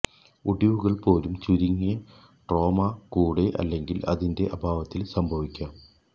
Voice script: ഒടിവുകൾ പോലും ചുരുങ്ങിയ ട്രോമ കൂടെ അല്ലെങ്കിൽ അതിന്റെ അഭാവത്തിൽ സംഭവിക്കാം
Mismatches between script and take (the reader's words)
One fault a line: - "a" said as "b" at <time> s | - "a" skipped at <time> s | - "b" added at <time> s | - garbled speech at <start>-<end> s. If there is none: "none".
none